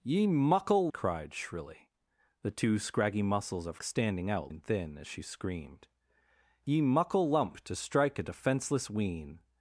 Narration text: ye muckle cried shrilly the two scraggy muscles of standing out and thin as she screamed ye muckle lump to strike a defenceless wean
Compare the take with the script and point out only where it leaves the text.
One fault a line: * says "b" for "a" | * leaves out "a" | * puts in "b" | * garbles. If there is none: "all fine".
all fine